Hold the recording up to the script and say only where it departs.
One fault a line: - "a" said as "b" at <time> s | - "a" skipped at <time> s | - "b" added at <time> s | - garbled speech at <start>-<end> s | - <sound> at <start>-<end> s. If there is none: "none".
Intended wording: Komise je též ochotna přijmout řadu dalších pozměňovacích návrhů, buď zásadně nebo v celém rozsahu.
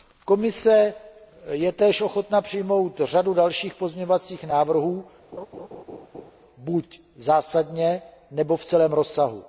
- laugh at 5.3-6.3 s